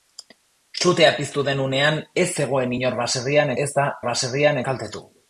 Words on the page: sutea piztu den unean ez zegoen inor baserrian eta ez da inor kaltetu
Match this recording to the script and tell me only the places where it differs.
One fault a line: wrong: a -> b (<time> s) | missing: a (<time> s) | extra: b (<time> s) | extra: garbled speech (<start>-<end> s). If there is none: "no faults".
missing: eta (3.5 s)
wrong: inor -> baserrian (4.1 s)